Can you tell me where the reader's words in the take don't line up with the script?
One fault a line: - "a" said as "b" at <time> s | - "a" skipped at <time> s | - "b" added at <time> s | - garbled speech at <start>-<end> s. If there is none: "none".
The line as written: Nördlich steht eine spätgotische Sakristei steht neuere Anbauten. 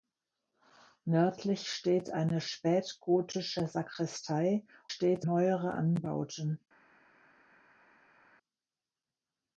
none